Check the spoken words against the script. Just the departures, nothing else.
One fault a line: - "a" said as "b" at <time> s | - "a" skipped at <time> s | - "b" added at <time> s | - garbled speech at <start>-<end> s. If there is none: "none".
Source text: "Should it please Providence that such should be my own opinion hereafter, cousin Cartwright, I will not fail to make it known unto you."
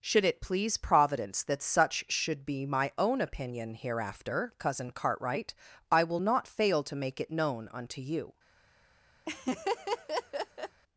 none